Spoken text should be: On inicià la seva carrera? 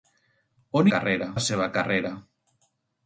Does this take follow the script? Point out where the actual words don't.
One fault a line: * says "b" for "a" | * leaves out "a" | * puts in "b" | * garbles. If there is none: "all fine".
* says "carrera" for "inicià"